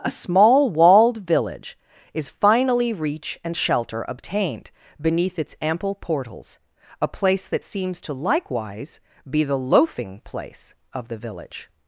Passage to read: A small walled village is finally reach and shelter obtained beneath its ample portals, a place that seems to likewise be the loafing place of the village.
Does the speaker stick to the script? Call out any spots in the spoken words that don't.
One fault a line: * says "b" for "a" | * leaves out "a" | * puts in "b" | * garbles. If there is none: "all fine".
all fine